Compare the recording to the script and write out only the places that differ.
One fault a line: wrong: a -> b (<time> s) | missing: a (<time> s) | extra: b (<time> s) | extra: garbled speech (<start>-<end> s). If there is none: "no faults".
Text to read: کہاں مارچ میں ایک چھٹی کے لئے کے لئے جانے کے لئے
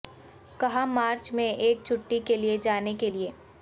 missing: کے لئے (2.6 s)